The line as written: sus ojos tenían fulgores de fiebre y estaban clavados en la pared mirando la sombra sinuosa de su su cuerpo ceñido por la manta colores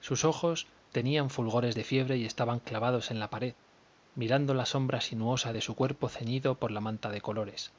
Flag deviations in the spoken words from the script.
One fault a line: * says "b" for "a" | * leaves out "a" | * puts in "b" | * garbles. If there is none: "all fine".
* leaves out "su"
* puts in "de"